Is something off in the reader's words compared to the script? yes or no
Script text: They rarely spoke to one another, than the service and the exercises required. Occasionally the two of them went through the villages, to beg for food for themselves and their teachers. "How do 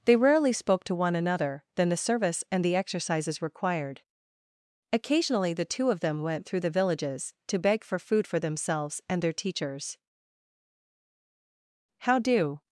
no